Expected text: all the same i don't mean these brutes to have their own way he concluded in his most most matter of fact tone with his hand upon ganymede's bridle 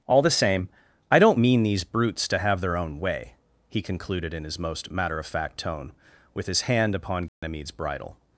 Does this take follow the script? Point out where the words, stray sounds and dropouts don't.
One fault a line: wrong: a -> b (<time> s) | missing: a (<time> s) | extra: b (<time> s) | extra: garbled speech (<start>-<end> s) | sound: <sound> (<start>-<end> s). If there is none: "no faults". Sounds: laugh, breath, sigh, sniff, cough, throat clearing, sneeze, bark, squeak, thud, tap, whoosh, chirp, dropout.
missing: most (4.9 s)
sound: dropout (7.3-7.4 s)